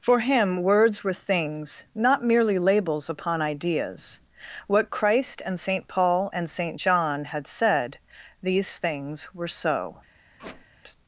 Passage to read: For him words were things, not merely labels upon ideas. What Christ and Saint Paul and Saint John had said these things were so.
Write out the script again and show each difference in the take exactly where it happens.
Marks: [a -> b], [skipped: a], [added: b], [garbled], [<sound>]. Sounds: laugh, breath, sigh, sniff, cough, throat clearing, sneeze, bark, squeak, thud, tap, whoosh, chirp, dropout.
For him words were things, not merely labels upon ideas. What Christ and Saint Paul and Saint John had said these things were so. [squeak]